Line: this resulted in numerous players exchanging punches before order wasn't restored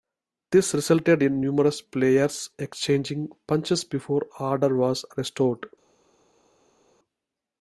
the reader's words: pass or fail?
fail